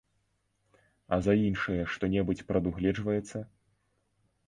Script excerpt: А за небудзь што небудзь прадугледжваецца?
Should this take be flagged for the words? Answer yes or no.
yes